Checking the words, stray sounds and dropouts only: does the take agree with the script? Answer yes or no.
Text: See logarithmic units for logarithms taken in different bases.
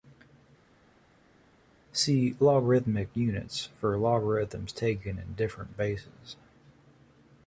yes